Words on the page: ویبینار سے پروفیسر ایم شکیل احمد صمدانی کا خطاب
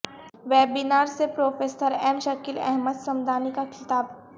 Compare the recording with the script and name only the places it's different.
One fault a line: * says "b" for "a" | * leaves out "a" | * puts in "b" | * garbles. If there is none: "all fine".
all fine